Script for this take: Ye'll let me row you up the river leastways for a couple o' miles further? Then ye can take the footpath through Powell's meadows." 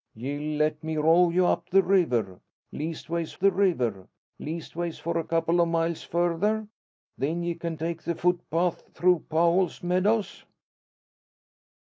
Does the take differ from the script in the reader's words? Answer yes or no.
yes